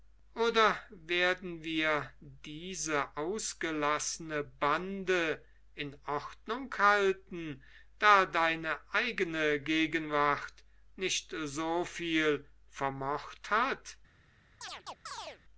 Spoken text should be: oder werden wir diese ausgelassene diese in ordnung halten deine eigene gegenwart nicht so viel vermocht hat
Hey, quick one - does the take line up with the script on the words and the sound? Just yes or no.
no